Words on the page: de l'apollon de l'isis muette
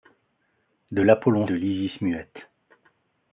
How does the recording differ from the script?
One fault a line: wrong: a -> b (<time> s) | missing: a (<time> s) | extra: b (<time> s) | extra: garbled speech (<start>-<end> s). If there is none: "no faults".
no faults